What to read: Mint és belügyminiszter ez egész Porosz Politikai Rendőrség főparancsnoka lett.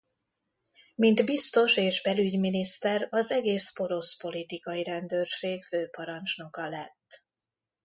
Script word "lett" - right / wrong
right